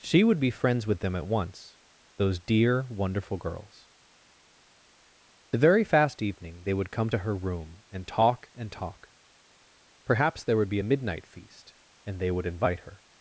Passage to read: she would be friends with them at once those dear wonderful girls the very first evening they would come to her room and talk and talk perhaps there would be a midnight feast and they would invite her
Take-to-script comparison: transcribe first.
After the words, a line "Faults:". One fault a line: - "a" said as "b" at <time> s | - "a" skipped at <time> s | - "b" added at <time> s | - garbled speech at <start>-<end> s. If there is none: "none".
she would be friends with them at once those dear wonderful girls the very fast evening they would come to her room and talk and talk perhaps there would be a midnight feast and they would invite her
Faults:
- "first" said as "fast" at 5.8 s